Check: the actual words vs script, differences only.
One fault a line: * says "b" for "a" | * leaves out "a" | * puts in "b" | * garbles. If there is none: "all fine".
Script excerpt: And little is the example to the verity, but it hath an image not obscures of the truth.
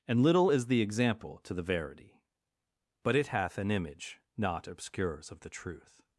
all fine